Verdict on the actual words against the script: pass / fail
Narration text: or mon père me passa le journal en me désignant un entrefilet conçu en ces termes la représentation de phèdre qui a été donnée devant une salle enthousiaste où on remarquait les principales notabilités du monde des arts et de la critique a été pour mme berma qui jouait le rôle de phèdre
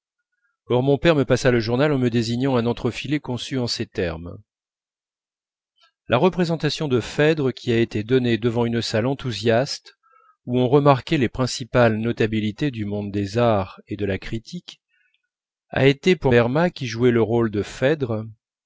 fail